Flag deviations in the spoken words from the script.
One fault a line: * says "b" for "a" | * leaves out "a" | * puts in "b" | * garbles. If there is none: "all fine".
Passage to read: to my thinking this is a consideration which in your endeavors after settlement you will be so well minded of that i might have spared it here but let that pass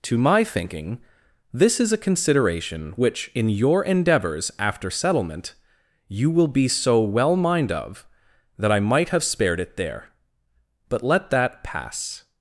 * says "mind" for "minded"
* says "there" for "here"